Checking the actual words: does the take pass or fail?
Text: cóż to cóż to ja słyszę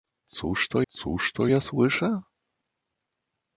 pass